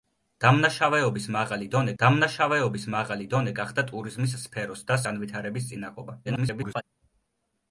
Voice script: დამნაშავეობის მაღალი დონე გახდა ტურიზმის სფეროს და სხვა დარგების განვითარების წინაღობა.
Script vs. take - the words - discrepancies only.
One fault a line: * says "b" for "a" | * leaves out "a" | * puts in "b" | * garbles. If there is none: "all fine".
* puts in "დამნაშავეობის მაღალი დონე"
* leaves out "სხვა დარგების"
* garbles